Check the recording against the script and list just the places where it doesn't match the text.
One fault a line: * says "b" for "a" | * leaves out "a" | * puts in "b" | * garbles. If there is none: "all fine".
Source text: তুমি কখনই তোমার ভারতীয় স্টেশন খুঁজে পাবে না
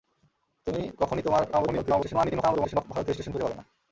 * garbles